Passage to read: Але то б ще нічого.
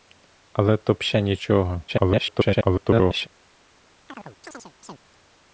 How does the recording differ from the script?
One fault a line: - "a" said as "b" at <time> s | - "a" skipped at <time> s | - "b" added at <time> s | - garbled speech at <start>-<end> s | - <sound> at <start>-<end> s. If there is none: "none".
- garbled speech at 1.9-3.3 s
- chirp at 4.1-5.0 s